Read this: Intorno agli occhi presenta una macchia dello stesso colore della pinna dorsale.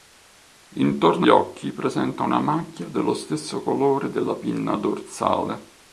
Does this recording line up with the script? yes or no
no